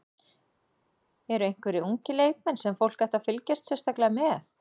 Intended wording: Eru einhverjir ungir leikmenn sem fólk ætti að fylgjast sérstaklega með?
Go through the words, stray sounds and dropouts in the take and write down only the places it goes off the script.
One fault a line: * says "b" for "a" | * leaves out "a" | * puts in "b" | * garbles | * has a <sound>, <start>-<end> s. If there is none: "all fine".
all fine